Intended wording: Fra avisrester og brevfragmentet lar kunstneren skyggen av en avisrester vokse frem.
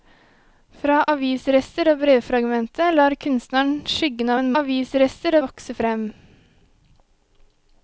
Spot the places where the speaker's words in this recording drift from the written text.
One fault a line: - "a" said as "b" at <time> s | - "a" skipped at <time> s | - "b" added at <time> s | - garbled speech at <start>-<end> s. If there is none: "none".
none